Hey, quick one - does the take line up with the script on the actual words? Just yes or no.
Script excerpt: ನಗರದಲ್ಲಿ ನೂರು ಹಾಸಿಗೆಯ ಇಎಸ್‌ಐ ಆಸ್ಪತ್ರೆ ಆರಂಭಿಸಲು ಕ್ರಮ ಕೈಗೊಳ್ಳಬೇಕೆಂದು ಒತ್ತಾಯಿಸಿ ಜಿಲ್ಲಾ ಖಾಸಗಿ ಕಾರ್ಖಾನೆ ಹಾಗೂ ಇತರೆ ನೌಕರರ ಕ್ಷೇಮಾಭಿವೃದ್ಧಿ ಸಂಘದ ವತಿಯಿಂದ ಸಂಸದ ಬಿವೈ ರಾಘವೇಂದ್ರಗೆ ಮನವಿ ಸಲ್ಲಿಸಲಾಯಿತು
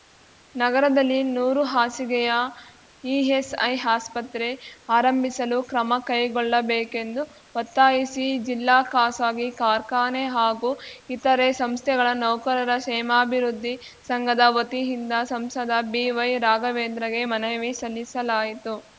no